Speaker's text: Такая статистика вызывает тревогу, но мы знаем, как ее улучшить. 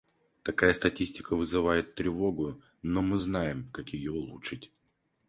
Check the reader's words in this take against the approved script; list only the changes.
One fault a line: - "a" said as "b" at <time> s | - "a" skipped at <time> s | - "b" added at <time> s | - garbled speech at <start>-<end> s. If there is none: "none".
none